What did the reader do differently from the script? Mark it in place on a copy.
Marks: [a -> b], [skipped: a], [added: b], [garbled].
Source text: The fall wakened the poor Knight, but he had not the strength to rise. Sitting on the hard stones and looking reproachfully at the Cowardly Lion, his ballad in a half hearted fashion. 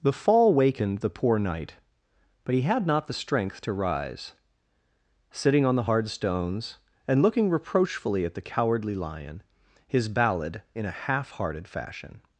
The fall wakened the poor Knight, but he had not the strength to rise. Sitting on the hard stones and looking reproachfully at the Cowardly Lion, his ballad in a half hearted fashion.